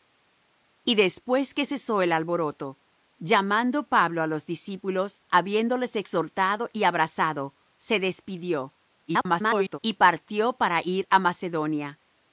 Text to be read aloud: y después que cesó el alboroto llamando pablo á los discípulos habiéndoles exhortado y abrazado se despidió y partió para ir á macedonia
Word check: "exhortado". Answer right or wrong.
right